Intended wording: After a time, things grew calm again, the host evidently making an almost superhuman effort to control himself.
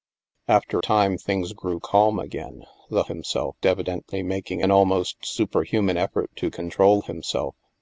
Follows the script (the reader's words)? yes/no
no